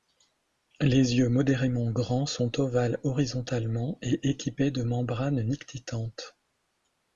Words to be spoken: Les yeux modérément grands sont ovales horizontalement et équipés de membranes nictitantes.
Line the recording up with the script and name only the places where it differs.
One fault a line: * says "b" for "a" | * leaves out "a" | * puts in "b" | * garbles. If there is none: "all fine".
all fine